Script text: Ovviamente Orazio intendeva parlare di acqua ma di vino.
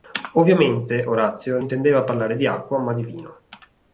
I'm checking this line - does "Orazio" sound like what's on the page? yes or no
yes